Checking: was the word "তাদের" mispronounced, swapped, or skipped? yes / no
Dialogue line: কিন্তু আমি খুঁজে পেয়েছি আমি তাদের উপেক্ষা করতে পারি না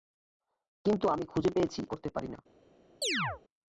yes